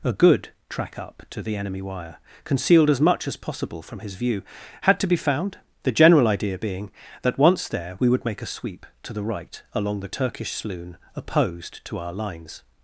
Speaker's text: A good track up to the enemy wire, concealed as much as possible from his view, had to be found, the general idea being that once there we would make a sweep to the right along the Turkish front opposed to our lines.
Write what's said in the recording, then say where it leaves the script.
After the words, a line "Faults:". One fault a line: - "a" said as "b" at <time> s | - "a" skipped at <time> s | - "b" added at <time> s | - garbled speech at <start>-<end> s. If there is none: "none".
A good track up to the enemy wire, concealed as much as possible from his view, had to be found, the general idea being that once there we would make a sweep to the right along the Turkish sloon opposed to our lines.
Faults:
- "front" said as "sloon" at 10.5 s